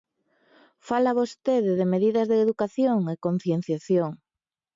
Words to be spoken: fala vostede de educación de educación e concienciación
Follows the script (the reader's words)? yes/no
no